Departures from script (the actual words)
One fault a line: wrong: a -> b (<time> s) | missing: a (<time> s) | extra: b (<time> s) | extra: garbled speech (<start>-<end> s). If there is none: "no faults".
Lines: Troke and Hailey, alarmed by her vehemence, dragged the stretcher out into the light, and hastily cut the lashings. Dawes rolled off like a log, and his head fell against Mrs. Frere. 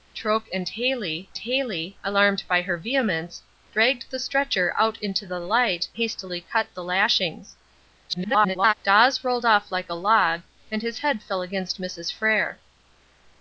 extra: Hailey (1.4 s)
missing: and (5.9 s)
extra: garbled speech (8.1-8.7 s)